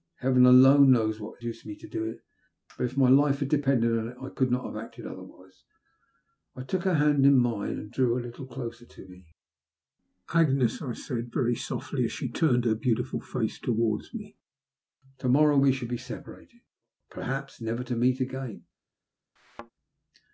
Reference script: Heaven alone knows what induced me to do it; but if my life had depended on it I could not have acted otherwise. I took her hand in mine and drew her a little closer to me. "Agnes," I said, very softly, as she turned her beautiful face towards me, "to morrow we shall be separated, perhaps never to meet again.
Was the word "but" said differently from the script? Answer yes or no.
no